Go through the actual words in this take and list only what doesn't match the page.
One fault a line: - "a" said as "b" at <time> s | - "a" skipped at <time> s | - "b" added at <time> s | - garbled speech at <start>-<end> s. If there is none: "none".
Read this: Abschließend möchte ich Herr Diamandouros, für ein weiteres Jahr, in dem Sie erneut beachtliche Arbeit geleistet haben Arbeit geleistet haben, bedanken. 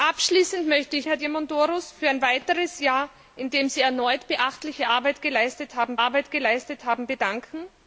none